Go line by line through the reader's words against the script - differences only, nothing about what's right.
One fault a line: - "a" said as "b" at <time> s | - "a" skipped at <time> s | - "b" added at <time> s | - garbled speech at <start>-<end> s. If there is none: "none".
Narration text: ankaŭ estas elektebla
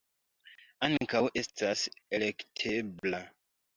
none